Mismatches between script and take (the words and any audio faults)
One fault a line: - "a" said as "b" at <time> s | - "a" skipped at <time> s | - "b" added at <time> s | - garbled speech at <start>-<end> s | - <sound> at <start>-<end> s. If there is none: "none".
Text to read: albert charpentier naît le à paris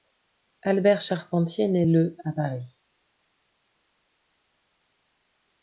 none